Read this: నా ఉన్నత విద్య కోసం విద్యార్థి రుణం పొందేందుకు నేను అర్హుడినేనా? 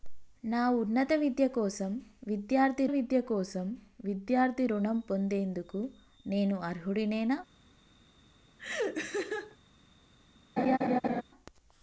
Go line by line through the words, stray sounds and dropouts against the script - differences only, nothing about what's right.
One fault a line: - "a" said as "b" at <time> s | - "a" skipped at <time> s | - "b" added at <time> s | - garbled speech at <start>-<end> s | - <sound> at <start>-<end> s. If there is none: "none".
- "విద్య కోసం విద్యార్థి" added at 2.8 s
- laugh at 8.6-9.6 s
- laugh at 10.6-11.2 s